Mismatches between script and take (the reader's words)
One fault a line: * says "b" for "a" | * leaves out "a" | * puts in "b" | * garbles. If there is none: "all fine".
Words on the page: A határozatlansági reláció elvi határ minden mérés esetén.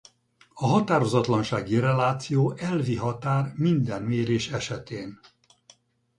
all fine